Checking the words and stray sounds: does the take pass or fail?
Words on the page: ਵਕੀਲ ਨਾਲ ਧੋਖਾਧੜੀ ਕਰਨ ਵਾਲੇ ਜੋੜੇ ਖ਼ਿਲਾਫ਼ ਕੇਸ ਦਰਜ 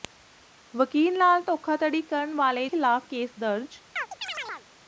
fail